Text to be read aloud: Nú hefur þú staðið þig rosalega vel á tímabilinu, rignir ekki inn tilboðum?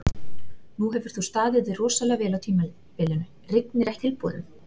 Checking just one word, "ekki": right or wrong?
wrong